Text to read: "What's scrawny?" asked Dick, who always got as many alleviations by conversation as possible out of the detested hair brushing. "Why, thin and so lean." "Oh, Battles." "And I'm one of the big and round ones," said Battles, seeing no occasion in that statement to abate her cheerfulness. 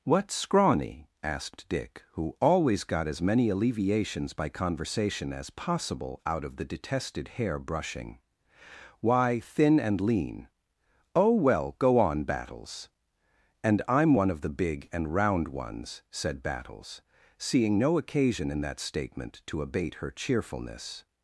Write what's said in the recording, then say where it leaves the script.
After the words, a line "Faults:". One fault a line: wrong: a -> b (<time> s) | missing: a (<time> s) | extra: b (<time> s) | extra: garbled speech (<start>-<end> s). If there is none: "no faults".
"What's scrawny?" asked Dick, who always got as many alleviations by conversation as possible out of the detested hair brushing. "Why, thin and lean." "Oh, well, go on, Battles." "And I'm one of the big and round ones," said Battles, seeing no occasion in that statement to abate her cheerfulness.
Faults:
missing: so (10.0 s)
extra: well go on (11.3 s)